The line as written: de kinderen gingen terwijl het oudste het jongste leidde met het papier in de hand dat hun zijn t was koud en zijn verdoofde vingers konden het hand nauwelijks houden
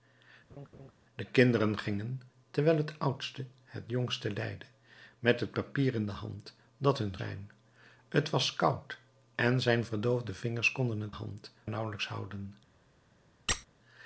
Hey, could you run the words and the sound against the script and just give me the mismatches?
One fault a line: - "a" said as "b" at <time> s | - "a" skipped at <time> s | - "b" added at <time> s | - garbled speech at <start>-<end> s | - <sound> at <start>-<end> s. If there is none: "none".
- laugh at 0.5-0.9 s
- squeak at 13.5-13.7 s